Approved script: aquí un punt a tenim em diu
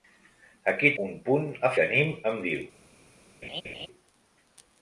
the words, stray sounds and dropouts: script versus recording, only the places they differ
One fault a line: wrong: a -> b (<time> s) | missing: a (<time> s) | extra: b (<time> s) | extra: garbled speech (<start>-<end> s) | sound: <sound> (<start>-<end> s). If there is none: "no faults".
sound: laugh (3.4-3.9 s)